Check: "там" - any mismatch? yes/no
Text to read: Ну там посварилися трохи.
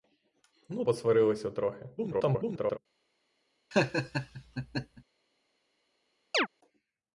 yes